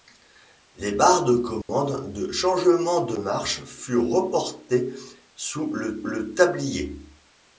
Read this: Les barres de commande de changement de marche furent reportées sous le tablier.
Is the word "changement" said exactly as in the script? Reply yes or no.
yes